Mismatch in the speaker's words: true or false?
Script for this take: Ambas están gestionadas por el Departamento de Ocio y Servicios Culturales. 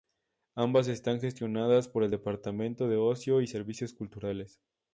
false